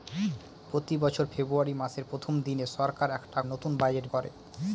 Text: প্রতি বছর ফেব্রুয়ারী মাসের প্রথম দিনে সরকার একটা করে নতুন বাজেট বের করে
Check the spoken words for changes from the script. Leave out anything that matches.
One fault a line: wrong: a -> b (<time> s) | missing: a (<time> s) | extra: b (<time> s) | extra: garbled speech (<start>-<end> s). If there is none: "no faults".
missing: করে (3.4 s)
missing: বের (4.1 s)